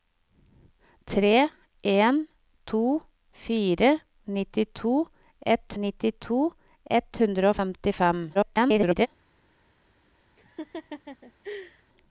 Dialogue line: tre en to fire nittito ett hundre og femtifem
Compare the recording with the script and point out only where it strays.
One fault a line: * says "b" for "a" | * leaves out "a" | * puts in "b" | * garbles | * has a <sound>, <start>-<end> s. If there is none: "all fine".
* puts in "nittito ett"
* garbles
* has a laugh, 10.4-11.8 s